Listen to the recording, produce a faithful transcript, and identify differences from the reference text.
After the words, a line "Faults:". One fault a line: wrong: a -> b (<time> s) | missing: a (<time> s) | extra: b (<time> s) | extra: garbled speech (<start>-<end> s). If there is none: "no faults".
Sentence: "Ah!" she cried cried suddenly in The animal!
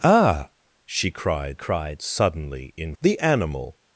"Ah!" she cried cried suddenly in The animal!
Faults:
no faults